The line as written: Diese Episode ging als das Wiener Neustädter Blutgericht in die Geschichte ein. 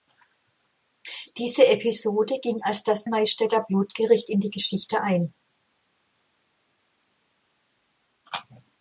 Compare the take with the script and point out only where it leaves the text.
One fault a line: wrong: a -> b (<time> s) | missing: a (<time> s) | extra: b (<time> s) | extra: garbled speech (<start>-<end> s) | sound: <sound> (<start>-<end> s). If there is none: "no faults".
missing: Wiener (3.1 s)